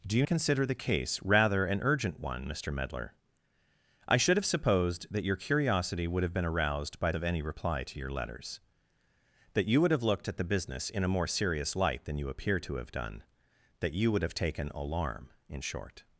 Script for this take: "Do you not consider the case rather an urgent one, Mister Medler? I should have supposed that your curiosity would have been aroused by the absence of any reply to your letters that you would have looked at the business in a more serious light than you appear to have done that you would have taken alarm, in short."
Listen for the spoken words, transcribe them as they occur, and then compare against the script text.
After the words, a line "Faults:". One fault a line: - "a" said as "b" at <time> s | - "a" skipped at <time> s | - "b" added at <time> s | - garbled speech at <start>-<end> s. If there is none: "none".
"Do you consider the case rather an urgent one, Mister Medler? I should have supposed that your curiosity would have been aroused by of any reply to your letters that you would have looked at the business in a more serious light than you appear to have done that you would have taken alarm, in short."
Faults:
- "not" skipped at 0.2 s
- "the absence" skipped at 7.1 s